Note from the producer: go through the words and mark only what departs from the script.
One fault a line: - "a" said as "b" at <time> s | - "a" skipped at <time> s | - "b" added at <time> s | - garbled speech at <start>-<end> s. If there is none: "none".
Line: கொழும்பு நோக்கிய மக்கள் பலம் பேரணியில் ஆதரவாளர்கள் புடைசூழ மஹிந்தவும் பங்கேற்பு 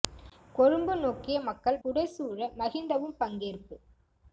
- "பலம் பேரணியில் ஆதரவாளர்கள்" skipped at 1.8 s